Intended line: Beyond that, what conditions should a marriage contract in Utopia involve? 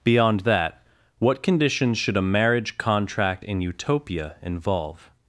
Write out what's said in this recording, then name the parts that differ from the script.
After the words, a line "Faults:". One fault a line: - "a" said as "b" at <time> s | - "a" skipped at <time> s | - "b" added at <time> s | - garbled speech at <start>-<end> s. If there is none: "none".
Beyond that, what conditions should a marriage contract in Utopia involve?
Faults:
none